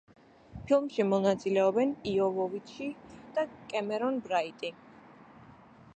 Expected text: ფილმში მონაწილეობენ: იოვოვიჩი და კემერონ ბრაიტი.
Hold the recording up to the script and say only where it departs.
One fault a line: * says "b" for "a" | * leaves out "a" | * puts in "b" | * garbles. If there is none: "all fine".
all fine